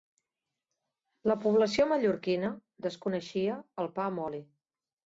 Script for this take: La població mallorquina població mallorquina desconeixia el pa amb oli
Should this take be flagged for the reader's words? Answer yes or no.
yes